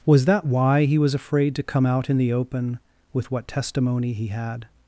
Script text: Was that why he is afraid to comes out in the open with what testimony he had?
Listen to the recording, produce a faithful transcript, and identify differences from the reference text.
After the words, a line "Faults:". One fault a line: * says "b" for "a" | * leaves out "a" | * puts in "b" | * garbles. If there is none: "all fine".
Was that why he was afraid to come out in the open with what testimony he had?
Faults:
* says "was" for "is"
* says "come" for "comes"